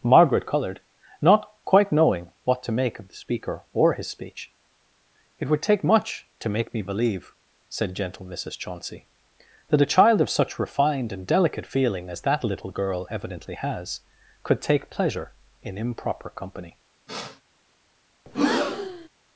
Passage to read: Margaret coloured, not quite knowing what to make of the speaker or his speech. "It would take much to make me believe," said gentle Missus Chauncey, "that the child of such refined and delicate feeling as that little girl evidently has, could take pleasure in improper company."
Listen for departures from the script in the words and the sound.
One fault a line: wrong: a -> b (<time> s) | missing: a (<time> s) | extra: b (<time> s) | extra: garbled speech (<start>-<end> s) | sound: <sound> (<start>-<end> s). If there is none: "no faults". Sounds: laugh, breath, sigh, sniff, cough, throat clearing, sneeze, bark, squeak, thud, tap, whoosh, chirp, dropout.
wrong: the -> a (9.8 s)
sound: sniff (17.1-17.4 s)
sound: breath (18.3-19.1 s)